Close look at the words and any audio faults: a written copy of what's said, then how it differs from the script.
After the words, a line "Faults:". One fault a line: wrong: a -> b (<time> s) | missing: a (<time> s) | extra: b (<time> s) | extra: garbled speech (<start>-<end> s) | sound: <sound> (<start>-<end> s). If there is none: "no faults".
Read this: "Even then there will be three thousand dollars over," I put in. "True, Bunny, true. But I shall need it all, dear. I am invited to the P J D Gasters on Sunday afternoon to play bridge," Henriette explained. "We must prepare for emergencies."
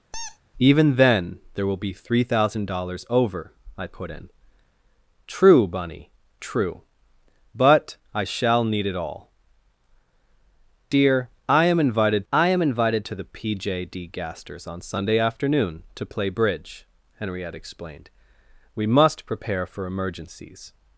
"Even then there will be three thousand dollars over," I put in. "True, Bunny, true. But I shall need it all, dear. I am invited I am invited to the P J D Gasters on Sunday afternoon to play bridge," Henriette explained. "We must prepare for emergencies."
Faults:
sound: squeak (0.1-0.4 s)
extra: I am invited (12.3 s)